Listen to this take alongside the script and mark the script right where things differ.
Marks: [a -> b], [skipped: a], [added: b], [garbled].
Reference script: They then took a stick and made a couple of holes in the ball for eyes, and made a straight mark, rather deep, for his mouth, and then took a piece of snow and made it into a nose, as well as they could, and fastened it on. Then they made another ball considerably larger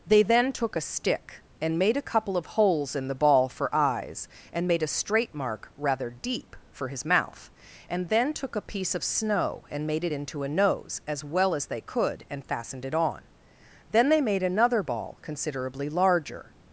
They then took a stick and made a couple of holes in the ball for eyes, and made a straight mark, rather deep, for his mouth, and then took a piece of snow and made it into a nose, as well as they could, and fastened it on. Then they made another ball considerably larger